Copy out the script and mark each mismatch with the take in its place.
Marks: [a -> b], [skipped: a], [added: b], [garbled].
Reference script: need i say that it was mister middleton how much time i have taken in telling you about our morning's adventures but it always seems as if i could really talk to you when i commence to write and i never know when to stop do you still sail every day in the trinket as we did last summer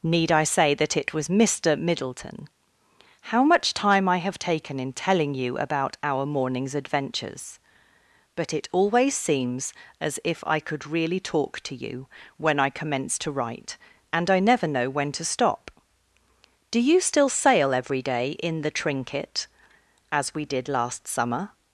need i say that it was mister middleton how much time i have taken in telling you about our morning's adventures but it always seems as if i could really talk to you when i commence to write and i never know when to stop do you still sail every day in the trinket as we did last summer